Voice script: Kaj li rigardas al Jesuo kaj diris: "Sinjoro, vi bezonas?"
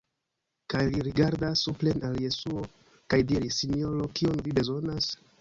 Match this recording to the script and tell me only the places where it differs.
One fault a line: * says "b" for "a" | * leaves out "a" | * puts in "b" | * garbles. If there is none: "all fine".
* puts in "supren"
* puts in "kion"